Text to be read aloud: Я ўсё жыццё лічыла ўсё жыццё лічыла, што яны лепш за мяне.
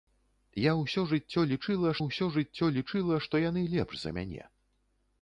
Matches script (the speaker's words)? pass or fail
pass